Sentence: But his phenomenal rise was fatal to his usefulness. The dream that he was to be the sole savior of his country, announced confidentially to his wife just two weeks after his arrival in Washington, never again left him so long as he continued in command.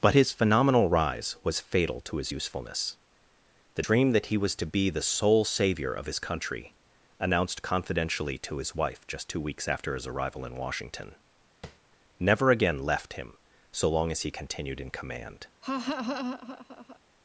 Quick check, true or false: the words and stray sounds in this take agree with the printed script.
false